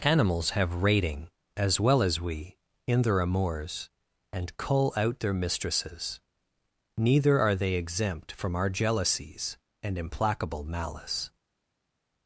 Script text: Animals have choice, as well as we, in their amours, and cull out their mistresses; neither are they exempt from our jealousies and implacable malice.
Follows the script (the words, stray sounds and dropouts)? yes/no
no